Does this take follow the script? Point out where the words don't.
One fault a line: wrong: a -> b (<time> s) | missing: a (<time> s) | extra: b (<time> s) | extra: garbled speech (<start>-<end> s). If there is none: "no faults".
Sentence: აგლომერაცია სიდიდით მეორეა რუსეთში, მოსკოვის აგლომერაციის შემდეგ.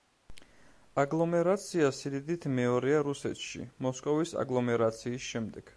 no faults